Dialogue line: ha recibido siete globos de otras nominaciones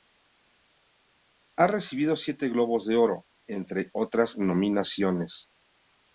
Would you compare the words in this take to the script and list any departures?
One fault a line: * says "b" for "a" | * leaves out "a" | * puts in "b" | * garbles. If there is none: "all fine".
* puts in "oro entre"